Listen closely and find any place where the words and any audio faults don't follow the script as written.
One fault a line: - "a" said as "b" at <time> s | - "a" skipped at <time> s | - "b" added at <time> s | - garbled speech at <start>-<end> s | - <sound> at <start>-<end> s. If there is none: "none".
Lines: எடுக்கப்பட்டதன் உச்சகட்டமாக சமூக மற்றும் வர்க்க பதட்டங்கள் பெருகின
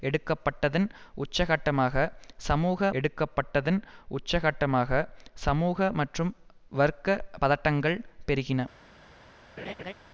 - "எடுக்கப்பட்டதன் உச்சகட்டமாக சமூக" added at 2.9 s
- laugh at 9.6-9.9 s